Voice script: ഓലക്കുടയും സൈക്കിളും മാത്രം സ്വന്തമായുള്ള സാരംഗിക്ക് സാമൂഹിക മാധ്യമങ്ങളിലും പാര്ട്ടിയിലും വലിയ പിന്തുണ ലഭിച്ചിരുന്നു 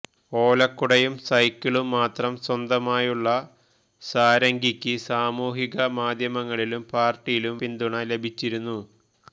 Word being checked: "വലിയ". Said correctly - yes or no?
no